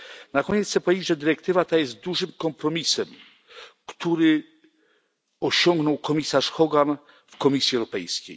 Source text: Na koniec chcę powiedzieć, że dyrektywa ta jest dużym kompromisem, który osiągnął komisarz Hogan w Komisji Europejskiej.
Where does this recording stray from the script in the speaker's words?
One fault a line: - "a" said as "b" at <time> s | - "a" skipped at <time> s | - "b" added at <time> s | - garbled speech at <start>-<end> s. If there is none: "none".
none